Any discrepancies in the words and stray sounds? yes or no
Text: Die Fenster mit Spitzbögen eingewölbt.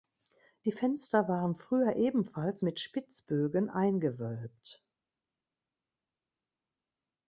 yes